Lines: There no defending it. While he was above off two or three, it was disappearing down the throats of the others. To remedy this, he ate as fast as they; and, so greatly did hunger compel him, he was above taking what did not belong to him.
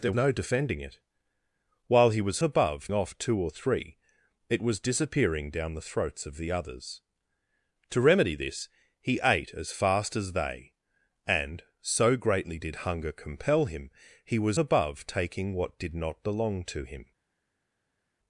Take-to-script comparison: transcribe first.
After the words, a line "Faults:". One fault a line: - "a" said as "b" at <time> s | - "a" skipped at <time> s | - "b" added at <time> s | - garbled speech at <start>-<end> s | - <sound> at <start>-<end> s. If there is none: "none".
There no defending it. While he was above off two or three, it was disappearing down the throats of the others. To remedy this, he ate as fast as they; and, so greatly did hunger compel him, he was above taking what did not belong to him.
Faults:
none